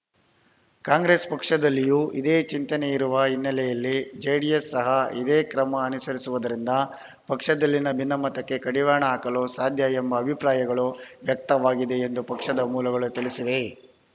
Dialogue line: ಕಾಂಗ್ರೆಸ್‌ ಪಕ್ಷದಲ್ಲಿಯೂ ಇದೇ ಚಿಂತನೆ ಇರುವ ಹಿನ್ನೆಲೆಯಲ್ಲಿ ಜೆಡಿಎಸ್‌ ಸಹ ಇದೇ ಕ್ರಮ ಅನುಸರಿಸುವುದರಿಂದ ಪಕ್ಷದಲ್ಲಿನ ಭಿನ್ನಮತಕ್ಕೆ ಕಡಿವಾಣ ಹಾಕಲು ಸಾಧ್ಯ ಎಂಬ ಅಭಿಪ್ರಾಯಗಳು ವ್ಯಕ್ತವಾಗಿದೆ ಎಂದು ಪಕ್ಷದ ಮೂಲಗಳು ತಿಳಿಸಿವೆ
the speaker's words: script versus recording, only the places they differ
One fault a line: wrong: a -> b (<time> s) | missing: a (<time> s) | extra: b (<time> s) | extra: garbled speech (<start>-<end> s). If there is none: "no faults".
no faults